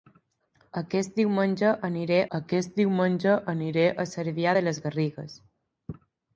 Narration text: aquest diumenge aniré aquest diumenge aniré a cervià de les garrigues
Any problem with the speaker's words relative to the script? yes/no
no